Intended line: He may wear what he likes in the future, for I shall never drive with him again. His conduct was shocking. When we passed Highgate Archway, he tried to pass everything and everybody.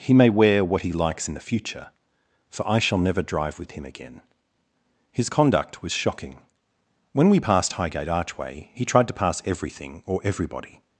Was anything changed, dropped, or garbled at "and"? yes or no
yes